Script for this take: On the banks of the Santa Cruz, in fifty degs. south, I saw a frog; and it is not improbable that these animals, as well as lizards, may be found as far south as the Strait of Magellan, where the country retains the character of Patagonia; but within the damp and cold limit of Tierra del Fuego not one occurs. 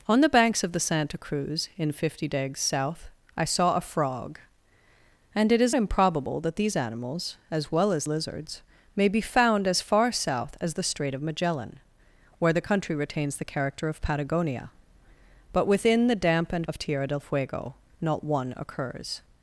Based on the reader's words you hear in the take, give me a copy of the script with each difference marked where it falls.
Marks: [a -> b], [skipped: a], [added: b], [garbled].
On the banks of the Santa Cruz, in fifty degs. south, I saw a frog; and it is [skipped: not] improbable that these animals, as well as lizards, may be found as far south as the Strait of Magellan, where the country retains the character of Patagonia; but within the damp and [skipped: cold limit] of Tierra del Fuego not one occurs.